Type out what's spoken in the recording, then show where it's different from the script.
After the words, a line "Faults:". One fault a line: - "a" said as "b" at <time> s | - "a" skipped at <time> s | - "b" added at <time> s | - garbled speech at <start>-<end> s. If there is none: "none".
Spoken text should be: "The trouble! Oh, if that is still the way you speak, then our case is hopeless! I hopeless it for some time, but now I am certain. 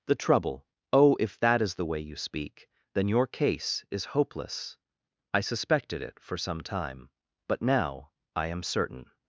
"The trouble! Oh, if that is the way you speak, then your case is hopeless! I suspected it for some time, but now I am certain.
Faults:
- "still" skipped at 1.8 s
- "our" said as "your" at 3.1 s
- "hopeless" said as "suspected" at 5.4 s